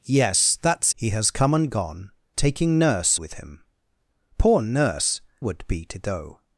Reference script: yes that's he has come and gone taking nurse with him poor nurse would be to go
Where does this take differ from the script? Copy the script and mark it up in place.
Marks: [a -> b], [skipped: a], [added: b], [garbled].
yes that's he has come and gone taking nurse with him poor nurse would be to go